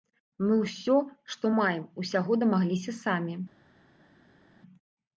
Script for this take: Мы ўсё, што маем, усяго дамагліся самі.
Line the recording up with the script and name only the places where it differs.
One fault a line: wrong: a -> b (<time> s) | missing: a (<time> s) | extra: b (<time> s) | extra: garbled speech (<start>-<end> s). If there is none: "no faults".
no faults